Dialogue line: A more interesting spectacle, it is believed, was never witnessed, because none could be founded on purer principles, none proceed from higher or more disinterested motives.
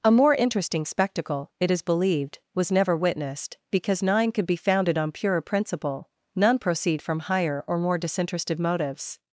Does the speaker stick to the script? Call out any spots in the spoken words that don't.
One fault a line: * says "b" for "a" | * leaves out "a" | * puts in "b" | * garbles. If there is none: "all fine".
* says "nine" for "none"
* says "principle" for "principles"